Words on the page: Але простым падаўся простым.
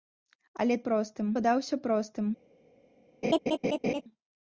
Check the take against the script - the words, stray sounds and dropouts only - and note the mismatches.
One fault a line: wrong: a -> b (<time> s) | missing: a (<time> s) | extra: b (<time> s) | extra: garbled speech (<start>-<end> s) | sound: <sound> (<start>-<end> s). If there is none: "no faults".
sound: laugh (3.2-4.0 s)